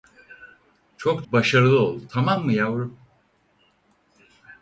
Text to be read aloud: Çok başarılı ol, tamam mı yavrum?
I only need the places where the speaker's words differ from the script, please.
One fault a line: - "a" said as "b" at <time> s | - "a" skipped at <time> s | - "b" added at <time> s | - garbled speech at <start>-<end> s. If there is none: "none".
none